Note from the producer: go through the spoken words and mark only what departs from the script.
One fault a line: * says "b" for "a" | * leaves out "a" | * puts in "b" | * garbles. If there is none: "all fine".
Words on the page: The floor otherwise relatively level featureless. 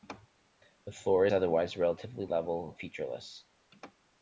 all fine